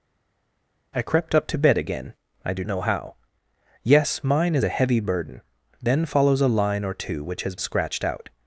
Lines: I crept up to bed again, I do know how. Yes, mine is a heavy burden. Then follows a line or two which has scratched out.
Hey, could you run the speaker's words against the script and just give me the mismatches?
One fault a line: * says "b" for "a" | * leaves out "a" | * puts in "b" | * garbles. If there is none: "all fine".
all fine